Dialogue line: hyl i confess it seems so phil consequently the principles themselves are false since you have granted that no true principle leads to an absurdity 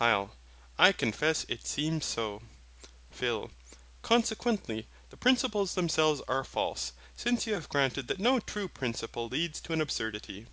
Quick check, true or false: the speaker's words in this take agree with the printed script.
true